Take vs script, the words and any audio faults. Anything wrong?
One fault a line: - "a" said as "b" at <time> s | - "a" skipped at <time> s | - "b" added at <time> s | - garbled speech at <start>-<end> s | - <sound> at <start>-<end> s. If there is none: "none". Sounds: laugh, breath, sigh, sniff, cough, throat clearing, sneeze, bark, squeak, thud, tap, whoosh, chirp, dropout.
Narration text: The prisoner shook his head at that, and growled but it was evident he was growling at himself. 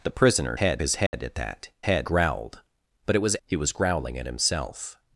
- "shook" said as "head" at 0.6 s
- dropout at 1.1-1.1 s
- "and" said as "head" at 1.8 s
- "evident" skipped at 3.4 s